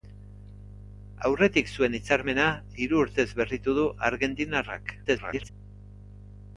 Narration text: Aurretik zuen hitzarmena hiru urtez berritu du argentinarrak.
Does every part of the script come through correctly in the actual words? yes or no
no